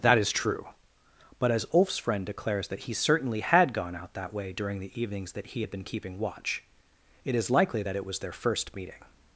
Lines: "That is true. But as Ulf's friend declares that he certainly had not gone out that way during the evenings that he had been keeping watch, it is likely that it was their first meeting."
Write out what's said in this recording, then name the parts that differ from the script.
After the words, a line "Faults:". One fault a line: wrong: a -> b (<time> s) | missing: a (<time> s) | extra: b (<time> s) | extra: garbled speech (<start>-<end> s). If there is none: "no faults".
"That is true. But as Ulf's friend declares that he certainly had gone out that way during the evenings that he had been keeping watch, it is likely that it was their first meeting."
Faults:
missing: not (3.7 s)